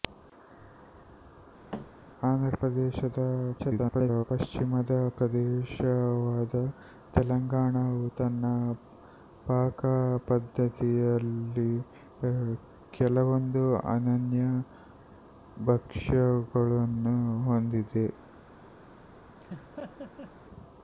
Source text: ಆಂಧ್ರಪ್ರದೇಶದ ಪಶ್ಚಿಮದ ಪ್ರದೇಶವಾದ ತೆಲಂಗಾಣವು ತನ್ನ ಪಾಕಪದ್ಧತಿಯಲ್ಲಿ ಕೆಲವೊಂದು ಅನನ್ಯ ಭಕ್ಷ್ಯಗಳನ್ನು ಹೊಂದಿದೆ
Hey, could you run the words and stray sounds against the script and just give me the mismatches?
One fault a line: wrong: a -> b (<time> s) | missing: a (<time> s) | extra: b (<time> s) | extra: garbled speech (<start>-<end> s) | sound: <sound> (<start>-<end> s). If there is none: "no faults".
sound: thud (1.7-1.9 s)
extra: garbled speech (3.6-4.2 s)
sound: laugh (19.4-20.3 s)